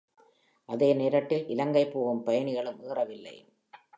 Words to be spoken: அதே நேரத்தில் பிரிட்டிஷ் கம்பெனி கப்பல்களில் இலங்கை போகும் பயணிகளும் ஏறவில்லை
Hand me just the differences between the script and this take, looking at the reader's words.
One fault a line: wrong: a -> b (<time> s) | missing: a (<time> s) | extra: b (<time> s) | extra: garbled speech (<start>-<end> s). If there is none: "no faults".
missing: பிரிட்டிஷ் கம்பெனி கப்பல்களில் (1.4 s)